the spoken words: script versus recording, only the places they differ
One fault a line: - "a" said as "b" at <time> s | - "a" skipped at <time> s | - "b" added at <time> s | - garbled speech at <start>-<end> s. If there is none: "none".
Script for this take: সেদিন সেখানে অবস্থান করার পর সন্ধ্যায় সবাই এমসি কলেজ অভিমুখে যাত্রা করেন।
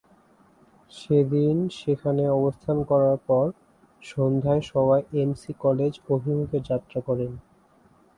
none